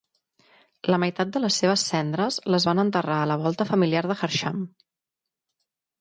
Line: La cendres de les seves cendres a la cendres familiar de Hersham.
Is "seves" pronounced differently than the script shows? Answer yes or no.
no